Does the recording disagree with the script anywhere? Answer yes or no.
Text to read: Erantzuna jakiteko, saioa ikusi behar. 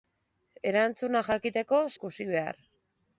yes